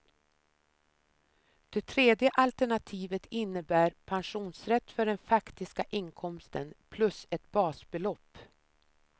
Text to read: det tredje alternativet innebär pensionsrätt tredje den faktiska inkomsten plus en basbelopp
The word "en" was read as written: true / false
false